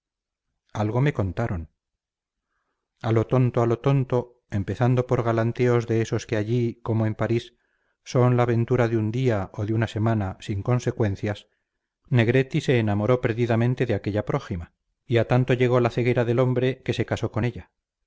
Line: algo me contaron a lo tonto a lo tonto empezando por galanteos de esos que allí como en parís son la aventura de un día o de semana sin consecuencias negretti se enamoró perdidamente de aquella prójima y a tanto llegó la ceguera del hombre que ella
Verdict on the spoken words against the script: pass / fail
fail